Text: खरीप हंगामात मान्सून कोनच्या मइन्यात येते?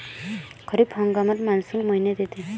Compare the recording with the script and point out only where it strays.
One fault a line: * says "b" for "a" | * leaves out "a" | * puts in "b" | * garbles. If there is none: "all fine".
* leaves out "कोनच्या"